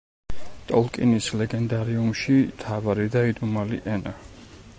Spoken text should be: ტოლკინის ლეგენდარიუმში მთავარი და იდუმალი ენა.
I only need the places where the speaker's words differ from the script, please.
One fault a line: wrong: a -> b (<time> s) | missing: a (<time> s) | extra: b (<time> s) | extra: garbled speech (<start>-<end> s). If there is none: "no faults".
no faults